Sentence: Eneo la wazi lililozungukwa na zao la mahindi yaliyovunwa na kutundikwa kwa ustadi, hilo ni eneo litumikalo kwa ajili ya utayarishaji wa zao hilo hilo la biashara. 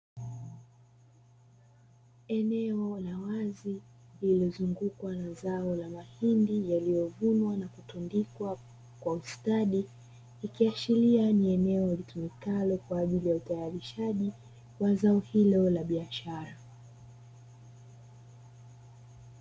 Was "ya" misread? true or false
false